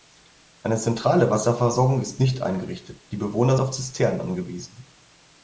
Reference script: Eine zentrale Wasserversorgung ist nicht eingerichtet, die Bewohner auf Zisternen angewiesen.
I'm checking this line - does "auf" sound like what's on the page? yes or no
yes